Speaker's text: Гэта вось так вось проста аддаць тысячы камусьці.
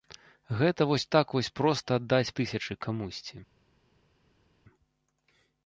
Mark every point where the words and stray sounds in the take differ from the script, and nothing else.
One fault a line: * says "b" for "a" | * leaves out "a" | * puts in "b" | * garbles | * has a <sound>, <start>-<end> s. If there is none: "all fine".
all fine